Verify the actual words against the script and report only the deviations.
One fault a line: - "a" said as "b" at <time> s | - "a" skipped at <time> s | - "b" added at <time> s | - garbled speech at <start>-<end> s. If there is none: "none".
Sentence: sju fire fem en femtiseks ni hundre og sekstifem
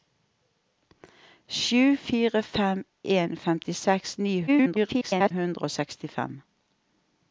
- garbled speech at 4.5-5.3 s